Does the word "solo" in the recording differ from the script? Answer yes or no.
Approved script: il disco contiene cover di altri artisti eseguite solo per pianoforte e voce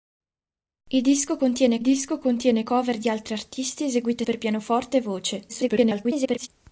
yes